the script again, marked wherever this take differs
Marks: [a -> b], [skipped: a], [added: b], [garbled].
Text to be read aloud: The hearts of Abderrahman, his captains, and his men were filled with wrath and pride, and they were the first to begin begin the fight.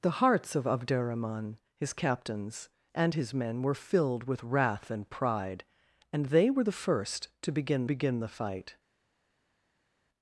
The hearts of Abderrahman, his captains, and his men were filled with wrath and pride, and they were the first to begin begin the fight.